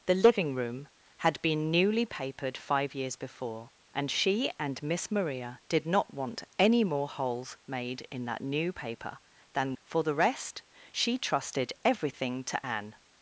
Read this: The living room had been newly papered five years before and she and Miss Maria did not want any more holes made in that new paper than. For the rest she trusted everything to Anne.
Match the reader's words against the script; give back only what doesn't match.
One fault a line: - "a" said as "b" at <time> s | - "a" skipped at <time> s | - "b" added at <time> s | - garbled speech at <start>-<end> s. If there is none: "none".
none